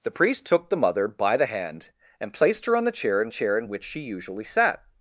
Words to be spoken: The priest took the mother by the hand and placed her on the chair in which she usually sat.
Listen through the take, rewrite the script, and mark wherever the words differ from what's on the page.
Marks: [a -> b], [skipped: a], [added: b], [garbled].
The priest took the mother by the hand and placed her on the chair in [added: chair in] which she usually sat.